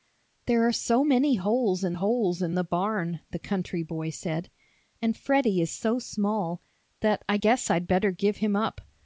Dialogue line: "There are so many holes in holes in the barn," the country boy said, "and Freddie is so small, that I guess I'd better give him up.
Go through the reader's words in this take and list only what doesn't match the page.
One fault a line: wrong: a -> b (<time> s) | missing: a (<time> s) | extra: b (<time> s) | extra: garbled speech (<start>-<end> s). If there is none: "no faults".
no faults